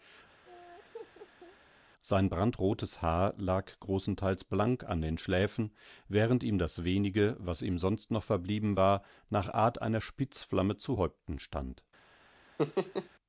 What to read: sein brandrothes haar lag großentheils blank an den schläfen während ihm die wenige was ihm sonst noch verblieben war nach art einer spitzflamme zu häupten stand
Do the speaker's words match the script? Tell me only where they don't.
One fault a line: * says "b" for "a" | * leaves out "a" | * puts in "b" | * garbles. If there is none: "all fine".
* says "das" for "die"